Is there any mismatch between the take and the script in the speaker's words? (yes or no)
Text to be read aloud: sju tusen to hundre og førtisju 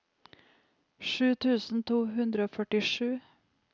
no